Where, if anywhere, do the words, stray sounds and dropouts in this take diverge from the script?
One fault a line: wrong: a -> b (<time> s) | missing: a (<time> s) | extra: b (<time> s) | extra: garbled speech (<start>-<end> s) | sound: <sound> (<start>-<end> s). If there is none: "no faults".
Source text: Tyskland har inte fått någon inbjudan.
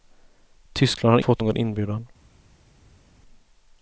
missing: inte (1.2 s)